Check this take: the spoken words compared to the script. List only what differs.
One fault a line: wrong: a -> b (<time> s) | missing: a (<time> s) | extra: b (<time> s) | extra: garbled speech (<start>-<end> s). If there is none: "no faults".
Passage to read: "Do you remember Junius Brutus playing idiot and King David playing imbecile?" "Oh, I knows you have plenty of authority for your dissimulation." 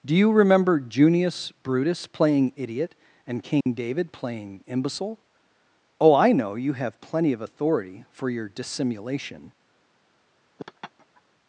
wrong: knows -> know (6.3 s)